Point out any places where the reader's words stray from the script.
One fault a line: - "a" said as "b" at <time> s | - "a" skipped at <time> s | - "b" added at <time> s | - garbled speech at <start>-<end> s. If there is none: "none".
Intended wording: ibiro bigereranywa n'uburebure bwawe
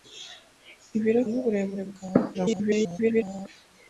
- "bigereranywa" skipped at 1.2 s
- garbled speech at 2.3-3.5 s